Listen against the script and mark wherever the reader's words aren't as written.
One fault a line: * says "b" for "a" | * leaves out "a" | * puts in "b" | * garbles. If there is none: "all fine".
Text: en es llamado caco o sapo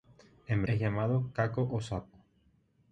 all fine